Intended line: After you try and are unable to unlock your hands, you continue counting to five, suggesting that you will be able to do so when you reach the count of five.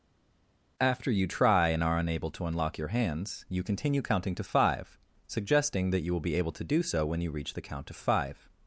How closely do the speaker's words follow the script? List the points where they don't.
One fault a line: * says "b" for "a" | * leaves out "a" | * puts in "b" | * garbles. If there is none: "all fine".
all fine